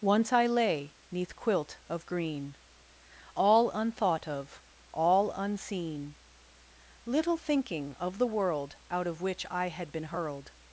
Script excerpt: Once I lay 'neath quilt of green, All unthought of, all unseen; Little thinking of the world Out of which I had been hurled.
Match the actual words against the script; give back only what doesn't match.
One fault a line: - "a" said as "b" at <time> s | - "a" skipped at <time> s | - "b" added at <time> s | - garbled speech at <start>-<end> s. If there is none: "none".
none